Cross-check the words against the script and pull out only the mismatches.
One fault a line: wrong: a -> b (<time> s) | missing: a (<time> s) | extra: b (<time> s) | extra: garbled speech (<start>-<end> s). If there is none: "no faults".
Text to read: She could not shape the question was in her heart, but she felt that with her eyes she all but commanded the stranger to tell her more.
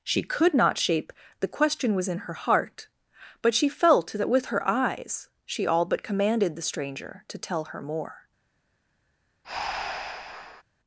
no faults